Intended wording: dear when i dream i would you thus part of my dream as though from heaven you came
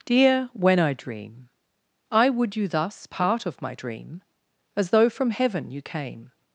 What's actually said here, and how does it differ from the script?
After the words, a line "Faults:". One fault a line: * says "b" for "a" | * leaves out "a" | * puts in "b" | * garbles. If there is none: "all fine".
dear when i dream i would you thus part of my dream as though from heaven you came
Faults:
all fine